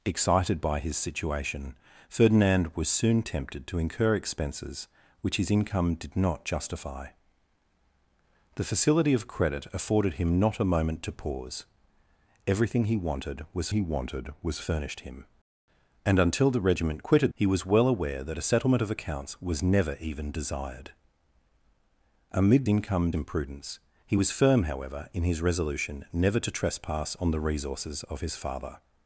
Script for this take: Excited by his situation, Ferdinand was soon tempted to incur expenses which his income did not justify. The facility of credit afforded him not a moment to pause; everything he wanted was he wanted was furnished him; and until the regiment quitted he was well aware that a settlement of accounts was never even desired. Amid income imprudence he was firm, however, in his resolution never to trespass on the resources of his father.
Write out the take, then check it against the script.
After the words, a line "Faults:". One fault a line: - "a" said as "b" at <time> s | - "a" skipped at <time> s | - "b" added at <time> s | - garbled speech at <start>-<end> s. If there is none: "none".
Excited by his situation, Ferdinand was soon tempted to incur expenses which his income did not justify. The facility of credit afforded him not a moment to pause; everything he wanted was he wanted was furnished him; and until the regiment quitted he was well aware that a settlement of accounts was never even desired. Amid income imprudence he was firm, however, in his resolution never to trespass on the resources of his father.
Faults:
none